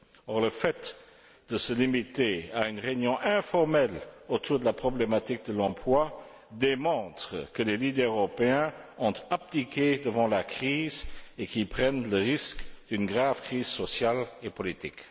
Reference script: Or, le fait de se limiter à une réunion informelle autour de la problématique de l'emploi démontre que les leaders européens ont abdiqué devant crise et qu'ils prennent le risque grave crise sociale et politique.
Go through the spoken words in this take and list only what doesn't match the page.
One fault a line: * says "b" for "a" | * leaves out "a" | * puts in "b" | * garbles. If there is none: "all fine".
* puts in "la"
* puts in "d'une"